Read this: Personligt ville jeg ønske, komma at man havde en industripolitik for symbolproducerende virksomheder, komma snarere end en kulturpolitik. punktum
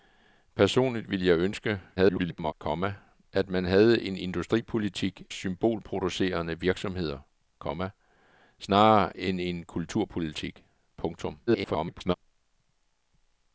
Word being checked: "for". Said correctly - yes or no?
no